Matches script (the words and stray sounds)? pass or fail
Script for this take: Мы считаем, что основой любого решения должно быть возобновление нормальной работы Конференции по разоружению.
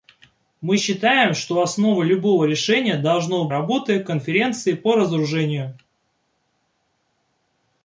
fail